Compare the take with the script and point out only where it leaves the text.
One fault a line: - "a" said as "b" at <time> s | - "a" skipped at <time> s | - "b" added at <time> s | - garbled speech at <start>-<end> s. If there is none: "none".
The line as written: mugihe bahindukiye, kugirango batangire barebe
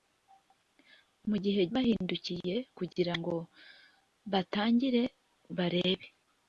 none